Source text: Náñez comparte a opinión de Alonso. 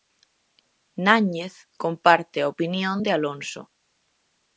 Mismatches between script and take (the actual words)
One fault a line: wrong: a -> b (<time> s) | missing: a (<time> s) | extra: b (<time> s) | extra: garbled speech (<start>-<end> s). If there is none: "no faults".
no faults